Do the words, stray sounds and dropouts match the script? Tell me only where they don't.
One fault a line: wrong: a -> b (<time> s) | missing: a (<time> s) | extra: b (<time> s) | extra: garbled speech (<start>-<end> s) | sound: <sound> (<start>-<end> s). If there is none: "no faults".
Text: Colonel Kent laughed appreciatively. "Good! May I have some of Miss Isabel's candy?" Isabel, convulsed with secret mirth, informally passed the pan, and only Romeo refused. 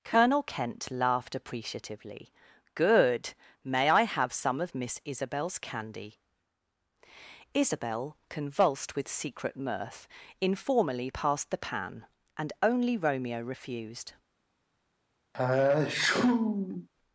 sound: sneeze (15.3-16.9 s)